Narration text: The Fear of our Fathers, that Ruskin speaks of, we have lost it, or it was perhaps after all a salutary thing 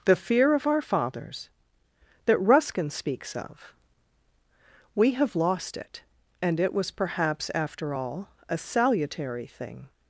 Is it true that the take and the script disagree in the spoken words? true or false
true